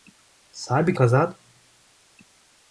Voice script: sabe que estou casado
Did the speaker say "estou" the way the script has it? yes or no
no